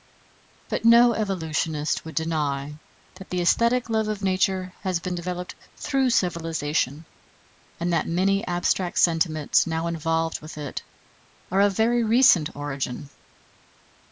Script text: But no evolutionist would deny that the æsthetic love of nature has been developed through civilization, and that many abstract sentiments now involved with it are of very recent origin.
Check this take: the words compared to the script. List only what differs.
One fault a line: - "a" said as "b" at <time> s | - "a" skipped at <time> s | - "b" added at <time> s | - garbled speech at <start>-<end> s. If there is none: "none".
none